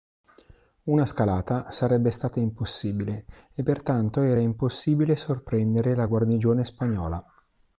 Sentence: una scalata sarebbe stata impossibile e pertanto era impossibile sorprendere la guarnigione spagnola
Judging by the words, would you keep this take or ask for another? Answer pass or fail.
pass